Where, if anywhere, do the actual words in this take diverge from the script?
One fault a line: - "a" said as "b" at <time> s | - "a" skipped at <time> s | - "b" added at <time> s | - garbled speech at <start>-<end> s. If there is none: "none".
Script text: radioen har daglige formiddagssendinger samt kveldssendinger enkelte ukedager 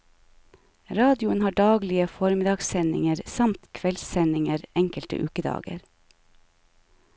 none